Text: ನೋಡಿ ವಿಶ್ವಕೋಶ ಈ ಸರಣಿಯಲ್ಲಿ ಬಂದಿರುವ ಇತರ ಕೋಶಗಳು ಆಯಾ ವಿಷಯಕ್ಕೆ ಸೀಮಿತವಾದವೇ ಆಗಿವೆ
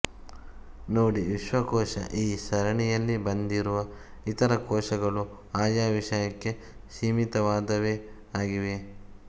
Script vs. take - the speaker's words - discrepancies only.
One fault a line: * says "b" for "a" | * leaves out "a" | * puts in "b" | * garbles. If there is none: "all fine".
all fine